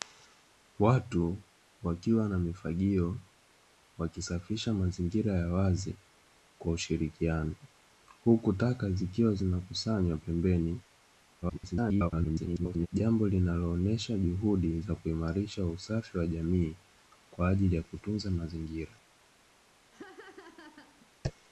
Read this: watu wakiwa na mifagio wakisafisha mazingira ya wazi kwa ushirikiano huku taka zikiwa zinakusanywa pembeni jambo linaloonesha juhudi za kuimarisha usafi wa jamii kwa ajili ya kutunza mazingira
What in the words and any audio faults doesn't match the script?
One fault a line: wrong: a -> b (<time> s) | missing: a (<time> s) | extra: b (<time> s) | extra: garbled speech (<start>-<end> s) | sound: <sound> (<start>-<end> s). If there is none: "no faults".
extra: garbled speech (11.4-12.9 s)
sound: laugh (19.9-21.1 s)